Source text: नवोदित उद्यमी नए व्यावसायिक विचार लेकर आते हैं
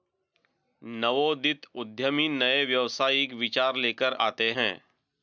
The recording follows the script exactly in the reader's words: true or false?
true